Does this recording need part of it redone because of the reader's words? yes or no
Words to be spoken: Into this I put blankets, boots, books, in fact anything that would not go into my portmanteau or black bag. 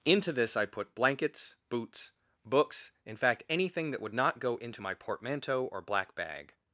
no